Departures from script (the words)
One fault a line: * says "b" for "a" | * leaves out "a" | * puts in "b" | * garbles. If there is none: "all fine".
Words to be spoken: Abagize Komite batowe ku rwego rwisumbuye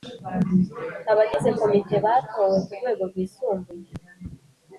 all fine